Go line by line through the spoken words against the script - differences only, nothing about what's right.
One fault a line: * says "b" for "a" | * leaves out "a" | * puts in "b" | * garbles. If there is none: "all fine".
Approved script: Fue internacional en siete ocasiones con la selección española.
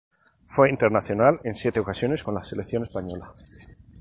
all fine